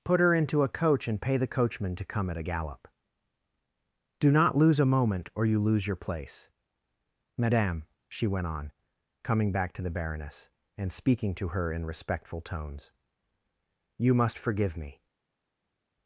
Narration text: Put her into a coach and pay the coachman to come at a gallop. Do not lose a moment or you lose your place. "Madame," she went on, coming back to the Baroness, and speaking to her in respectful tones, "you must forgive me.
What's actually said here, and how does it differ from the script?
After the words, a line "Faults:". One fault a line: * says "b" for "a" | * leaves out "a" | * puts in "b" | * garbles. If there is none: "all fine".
Put her into a coach and pay the coachman to come at a gallop. Do not lose a moment or you lose your place. "Madame," she went on, coming back to the Baroness, and speaking to her in respectful tones, "you must forgive me.
Faults:
all fine